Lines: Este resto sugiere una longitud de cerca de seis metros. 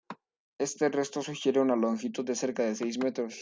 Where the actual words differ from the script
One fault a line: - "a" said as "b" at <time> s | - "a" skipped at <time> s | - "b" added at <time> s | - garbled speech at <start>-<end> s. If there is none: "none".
none